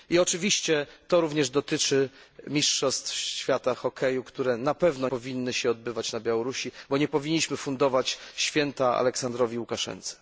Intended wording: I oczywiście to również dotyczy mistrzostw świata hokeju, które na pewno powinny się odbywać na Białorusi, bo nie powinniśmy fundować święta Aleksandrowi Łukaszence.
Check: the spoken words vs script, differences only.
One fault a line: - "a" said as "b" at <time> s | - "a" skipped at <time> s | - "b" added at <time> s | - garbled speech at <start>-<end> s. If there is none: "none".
none